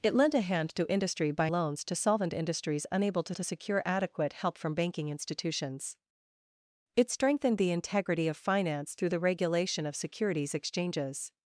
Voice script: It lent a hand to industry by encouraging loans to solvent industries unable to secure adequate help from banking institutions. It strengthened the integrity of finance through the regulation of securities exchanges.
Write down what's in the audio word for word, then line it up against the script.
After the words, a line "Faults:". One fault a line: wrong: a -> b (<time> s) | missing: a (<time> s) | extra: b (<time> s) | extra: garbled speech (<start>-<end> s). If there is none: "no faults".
It lent a hand to industry by loans to solvent industries unable to to secure adequate help from banking institutions. It strengthened the integrity of finance through the regulation of securities exchanges.
Faults:
missing: encouraging (1.5 s)
extra: to (3.3 s)